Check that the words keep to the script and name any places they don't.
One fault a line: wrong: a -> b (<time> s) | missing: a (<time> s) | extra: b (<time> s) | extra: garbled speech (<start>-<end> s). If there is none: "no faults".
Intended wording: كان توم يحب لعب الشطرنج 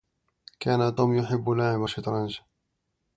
no faults